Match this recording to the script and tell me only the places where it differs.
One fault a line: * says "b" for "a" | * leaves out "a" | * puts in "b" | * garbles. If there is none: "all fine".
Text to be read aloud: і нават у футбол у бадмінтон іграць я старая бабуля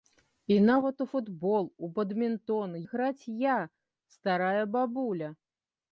all fine